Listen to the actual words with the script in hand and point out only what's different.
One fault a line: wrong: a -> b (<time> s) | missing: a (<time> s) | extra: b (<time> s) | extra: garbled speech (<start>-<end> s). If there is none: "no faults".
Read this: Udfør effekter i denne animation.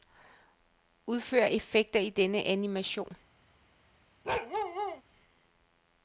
no faults